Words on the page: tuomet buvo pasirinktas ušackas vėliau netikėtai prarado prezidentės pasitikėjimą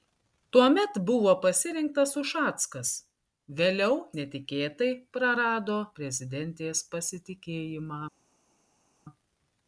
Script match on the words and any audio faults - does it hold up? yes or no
yes